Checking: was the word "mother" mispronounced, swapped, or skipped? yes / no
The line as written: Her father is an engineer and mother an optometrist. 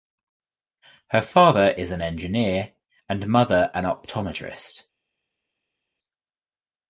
no